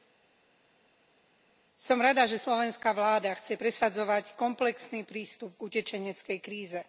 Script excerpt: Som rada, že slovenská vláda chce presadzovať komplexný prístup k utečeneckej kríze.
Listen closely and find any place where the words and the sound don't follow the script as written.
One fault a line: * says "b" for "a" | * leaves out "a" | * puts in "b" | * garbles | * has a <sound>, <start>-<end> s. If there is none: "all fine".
all fine